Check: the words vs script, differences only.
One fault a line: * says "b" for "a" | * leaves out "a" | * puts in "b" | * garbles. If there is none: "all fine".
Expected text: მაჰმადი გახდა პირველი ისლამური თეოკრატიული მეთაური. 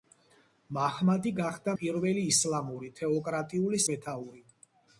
all fine